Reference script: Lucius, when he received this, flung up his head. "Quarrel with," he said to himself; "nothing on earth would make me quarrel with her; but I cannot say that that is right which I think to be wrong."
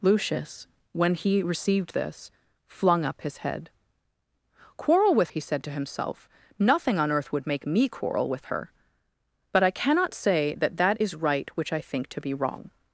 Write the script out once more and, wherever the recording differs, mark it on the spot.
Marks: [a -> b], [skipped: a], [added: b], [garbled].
Lucius, when he received this, flung up his head. "Quarrel with," he said to himself; "nothing on earth would make me quarrel with her; but I cannot say that that is right which I think to be wrong."